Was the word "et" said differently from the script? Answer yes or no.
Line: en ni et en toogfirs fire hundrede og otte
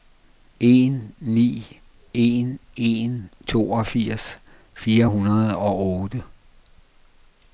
yes